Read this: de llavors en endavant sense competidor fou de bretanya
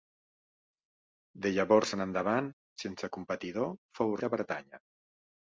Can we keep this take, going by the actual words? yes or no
yes